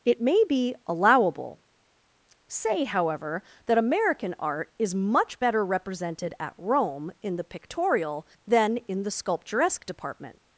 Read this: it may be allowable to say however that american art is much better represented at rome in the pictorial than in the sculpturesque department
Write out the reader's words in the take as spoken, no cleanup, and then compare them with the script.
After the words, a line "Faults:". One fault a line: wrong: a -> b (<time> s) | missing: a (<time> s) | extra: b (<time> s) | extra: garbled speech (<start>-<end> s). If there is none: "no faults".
it may be allowable say however that american art is much better represented at rome in the pictorial than in the sculpturesque department
Faults:
missing: to (1.6 s)